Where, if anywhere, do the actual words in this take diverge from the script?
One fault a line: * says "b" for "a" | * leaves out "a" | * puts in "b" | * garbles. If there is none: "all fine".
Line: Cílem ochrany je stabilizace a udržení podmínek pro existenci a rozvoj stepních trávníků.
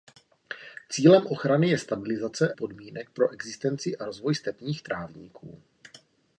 * leaves out "a udržení"